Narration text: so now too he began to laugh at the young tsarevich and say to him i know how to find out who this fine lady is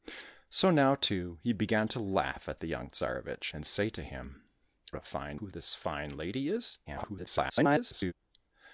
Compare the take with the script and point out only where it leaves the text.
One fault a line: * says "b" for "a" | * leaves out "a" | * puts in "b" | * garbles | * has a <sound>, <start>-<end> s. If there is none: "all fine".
* leaves out "i know how"
* leaves out "out"
* garbles